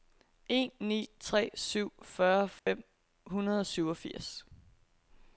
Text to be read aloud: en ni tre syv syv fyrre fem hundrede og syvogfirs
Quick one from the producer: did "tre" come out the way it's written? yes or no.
yes